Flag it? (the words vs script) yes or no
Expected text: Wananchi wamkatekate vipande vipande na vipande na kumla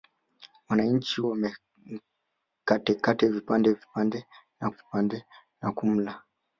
no